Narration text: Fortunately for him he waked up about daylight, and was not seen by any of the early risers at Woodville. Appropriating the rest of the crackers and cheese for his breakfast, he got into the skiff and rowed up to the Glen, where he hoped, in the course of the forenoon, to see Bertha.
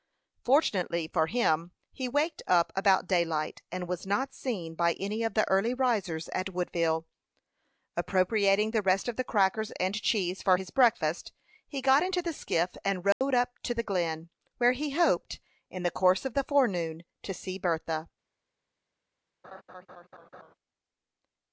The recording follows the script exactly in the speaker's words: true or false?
true